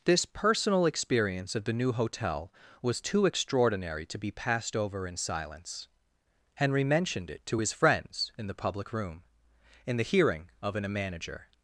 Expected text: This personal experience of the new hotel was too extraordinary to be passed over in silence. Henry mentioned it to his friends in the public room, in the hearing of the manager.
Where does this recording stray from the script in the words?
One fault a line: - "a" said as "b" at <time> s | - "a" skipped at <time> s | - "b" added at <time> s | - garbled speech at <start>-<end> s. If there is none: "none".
- "the" said as "an" at 10.7 s